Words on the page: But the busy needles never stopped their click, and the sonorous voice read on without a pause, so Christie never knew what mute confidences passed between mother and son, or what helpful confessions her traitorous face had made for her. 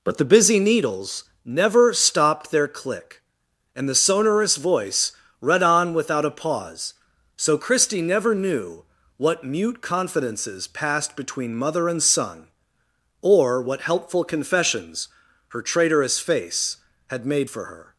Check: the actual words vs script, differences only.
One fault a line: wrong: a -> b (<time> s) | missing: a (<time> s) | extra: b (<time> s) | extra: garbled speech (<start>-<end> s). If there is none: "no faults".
no faults